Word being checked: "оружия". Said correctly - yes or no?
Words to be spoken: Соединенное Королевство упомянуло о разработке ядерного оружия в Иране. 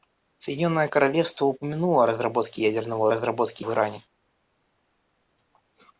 no